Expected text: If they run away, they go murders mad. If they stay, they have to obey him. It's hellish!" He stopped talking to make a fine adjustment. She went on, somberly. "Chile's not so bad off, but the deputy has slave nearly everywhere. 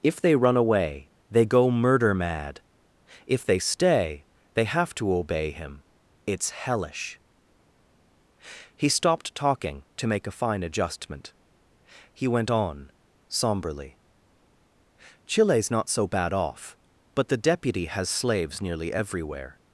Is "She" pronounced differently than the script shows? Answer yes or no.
yes